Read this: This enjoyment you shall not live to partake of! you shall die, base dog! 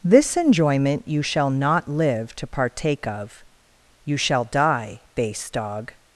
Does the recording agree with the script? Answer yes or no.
yes